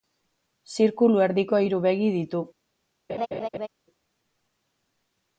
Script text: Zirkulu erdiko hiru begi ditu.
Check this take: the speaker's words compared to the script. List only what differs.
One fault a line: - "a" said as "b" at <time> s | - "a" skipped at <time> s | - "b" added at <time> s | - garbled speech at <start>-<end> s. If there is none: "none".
none